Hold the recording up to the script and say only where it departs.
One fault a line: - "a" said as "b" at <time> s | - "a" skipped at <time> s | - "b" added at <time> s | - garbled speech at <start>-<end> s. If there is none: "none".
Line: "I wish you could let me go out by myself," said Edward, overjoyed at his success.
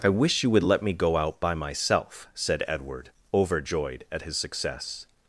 - "could" said as "would" at 0.5 s